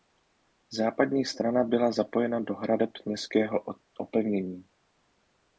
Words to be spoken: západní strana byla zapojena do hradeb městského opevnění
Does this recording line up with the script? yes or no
yes